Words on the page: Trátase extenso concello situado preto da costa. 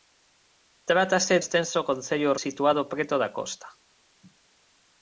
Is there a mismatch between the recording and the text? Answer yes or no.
no